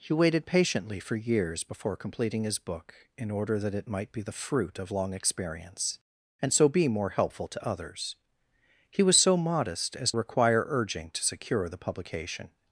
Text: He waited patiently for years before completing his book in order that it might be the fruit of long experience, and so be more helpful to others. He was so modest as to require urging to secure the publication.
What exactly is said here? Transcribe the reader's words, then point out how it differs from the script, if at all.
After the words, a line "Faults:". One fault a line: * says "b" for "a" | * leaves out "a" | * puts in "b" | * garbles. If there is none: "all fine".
He waited patiently for years before completing his book in order that it might be the fruit of long experience, and so be more helpful to others. He was so modest as require urging to secure the publication.
Faults:
* leaves out "to"